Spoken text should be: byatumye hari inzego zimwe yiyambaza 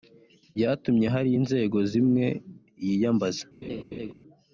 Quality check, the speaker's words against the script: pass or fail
pass